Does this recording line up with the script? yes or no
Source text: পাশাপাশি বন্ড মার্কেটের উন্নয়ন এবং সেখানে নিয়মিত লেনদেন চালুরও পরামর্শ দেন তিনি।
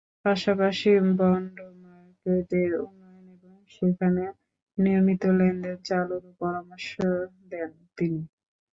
yes